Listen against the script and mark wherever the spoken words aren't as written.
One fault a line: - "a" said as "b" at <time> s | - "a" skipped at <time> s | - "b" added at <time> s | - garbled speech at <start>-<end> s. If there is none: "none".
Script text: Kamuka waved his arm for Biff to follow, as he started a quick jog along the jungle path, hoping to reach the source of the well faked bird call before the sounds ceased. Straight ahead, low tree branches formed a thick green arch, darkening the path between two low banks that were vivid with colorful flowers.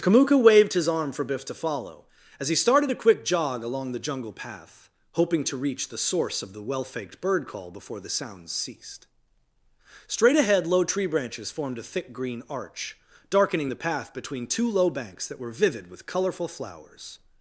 none